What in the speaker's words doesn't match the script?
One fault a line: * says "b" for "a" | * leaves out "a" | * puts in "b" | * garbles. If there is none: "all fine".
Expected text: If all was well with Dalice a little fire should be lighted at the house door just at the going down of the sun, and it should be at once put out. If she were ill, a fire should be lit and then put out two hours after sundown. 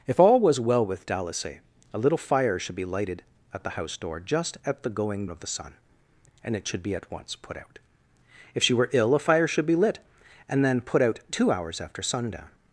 * leaves out "down"